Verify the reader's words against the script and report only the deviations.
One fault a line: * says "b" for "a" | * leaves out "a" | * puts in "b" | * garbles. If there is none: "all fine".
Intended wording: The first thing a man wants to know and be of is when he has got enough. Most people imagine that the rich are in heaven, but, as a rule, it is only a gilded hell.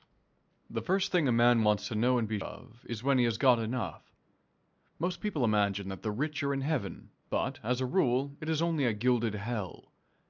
all fine